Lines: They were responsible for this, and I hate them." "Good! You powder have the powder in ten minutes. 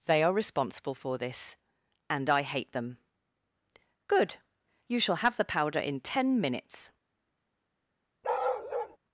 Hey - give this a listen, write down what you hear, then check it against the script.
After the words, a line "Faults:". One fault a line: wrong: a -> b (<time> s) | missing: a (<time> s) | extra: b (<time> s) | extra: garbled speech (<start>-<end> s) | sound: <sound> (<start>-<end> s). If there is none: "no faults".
They are responsible for this, and I hate them." "Good! You shall have the powder in ten minutes.
Faults:
wrong: were -> are (0.2 s)
wrong: powder -> shall (5.0 s)
sound: bark (8.2-9.0 s)